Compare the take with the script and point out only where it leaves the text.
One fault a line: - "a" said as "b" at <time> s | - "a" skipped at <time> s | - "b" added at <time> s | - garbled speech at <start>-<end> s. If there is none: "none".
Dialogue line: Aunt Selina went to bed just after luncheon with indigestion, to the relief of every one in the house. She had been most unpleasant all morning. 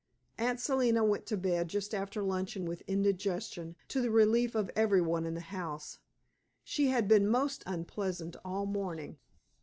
none